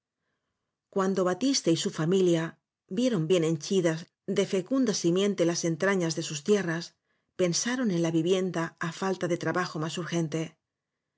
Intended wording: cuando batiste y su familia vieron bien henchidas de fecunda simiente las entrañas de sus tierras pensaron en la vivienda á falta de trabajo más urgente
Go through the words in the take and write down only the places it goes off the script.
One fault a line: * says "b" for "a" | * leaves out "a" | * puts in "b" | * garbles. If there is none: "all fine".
all fine